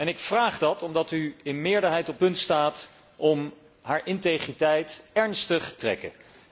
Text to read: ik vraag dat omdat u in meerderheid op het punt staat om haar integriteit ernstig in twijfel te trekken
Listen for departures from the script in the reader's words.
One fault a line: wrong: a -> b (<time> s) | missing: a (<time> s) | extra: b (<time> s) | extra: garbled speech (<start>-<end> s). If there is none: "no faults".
missing: het (2.2 s)
missing: in twijfel te (5.7 s)